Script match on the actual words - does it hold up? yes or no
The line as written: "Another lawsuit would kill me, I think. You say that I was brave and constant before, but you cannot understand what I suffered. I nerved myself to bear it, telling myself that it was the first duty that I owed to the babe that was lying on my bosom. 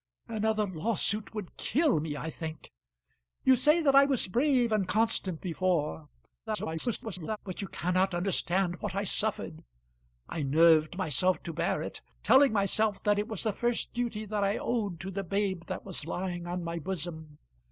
no